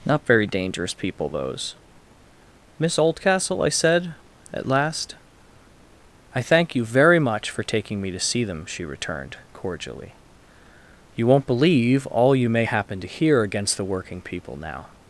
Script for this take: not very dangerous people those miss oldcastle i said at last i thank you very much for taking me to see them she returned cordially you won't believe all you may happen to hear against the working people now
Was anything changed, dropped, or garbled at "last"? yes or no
no